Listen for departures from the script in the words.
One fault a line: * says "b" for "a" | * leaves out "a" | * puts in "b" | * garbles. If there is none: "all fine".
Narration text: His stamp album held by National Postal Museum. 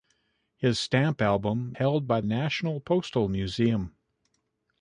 all fine